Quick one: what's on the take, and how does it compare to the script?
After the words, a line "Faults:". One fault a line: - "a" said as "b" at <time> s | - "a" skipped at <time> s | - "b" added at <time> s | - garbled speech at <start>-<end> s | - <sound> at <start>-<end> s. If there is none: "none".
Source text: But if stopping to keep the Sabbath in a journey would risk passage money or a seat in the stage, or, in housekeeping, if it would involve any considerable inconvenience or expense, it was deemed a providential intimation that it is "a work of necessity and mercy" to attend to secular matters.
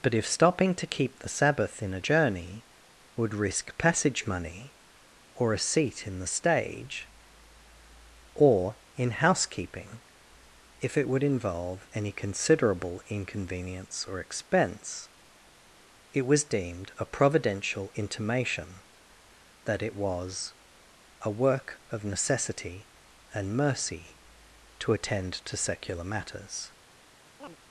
But if stopping to keep the Sabbath in a journey would risk passage money or a seat in the stage, or, in housekeeping, if it would involve any considerable inconvenience or expense, it was deemed a providential intimation that it was "a work of necessity and mercy" to attend to secular matters.
Faults:
- "is" said as "was" at 19.9 s
- chirp at 27.4-27.6 s